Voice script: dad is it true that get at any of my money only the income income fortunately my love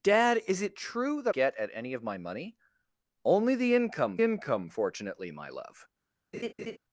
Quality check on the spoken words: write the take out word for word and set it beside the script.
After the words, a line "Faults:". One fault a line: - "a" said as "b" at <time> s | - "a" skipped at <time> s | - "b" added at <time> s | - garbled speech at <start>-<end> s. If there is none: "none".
dad is it true that get at any of my money only the income income fortunately my love
Faults:
none